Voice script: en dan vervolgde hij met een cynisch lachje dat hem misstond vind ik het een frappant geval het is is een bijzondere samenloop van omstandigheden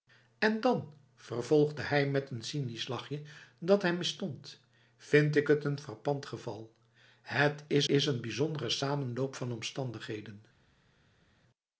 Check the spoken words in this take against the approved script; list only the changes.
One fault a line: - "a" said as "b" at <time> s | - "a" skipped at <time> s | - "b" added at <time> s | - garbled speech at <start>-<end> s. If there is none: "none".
none